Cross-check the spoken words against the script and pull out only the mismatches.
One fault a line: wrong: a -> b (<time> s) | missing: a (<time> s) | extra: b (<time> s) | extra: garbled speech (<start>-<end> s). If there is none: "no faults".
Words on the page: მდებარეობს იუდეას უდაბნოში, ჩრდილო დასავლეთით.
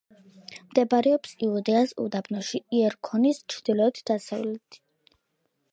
extra: იერიქონის (2.8 s)